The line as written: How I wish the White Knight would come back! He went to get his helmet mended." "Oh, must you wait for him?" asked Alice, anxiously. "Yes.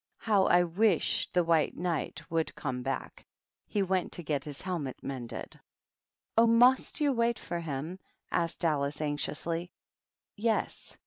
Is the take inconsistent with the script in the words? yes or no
no